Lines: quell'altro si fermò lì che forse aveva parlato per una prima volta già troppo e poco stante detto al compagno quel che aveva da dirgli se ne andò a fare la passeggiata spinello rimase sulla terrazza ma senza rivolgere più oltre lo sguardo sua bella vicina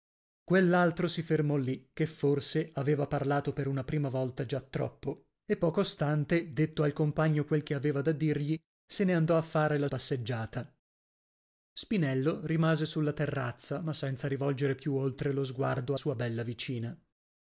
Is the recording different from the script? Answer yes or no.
no